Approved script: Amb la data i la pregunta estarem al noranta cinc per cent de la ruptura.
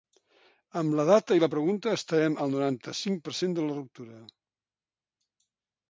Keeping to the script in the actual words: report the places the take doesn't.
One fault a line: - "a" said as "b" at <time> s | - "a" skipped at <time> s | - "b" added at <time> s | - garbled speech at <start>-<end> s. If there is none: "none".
none